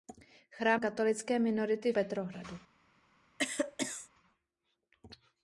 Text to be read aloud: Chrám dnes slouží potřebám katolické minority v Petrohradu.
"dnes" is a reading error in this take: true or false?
true